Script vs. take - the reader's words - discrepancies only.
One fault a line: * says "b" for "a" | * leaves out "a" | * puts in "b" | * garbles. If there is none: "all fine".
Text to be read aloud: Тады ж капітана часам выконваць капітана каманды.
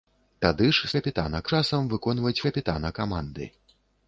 all fine